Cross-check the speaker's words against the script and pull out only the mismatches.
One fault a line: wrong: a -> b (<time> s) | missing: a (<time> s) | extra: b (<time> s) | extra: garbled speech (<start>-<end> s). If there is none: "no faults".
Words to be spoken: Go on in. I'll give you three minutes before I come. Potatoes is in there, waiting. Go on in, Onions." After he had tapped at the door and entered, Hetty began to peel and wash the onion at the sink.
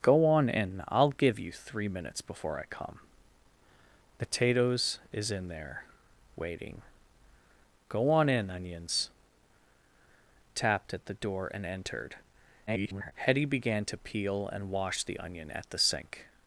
missing: After he had (9.1 s)
extra: garbled speech (12.7-13.1 s)